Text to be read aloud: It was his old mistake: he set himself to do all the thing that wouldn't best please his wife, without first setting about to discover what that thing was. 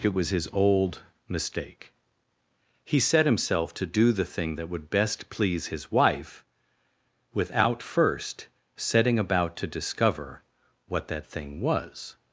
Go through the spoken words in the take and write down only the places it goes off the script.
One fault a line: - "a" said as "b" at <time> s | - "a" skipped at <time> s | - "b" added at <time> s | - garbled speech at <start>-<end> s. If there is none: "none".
- "all" skipped at 4.1 s
- "wouldn't" said as "would" at 4.7 s